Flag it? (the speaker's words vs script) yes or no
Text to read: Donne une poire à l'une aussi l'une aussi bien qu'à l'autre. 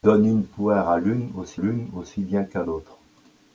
no